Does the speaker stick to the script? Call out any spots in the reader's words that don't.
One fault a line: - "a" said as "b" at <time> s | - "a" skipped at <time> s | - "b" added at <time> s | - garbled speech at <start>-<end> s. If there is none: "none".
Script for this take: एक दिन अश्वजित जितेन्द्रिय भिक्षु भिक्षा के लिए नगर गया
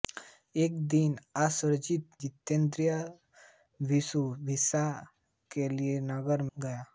none